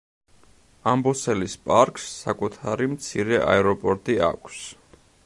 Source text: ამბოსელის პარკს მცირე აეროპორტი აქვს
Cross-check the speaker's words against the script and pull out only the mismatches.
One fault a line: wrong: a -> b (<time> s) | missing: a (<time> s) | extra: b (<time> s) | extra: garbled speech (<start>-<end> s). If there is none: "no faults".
extra: საკუთარი (2.2 s)